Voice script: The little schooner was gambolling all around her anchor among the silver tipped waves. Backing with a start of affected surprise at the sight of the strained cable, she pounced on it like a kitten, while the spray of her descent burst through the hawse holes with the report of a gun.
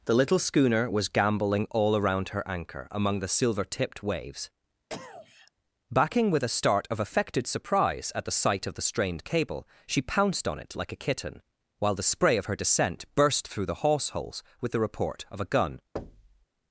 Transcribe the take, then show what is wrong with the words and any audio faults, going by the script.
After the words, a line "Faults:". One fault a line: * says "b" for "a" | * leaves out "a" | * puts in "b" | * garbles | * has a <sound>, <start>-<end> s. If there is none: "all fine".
The little schooner was gambolling all around her anchor among the silver tipped waves. Backing with a start of affected surprise at the sight of the strained cable, she pounced on it like a kitten, while the spray of her descent burst through the hawse holes with the report of a gun.
Faults:
* has a cough, 4.9-5.5 s
* has a thud, 16.0-16.5 s